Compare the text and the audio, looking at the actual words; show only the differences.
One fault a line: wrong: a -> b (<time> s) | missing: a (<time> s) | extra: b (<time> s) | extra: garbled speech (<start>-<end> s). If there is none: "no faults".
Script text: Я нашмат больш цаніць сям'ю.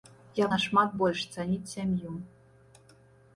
no faults